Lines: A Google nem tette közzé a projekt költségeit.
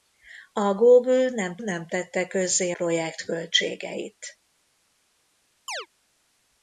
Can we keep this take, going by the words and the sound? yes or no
no